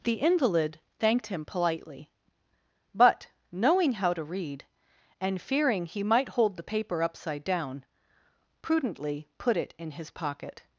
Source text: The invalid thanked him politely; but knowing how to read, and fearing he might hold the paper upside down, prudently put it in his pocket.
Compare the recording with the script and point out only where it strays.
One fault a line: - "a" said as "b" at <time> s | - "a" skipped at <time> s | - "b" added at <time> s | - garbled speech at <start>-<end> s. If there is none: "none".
none